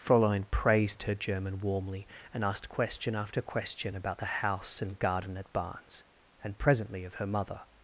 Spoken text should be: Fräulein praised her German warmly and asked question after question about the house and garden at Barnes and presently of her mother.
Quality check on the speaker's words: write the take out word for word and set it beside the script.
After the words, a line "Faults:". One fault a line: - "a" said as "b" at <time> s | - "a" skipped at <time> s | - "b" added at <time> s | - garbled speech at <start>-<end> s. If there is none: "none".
Fräulein praised her German warmly and asked question after question about the house and garden at Barnes and presently of her mother.
Faults:
none